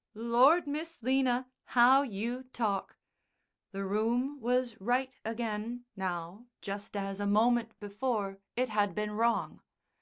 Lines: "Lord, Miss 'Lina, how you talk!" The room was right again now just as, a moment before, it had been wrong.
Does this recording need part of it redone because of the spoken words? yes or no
no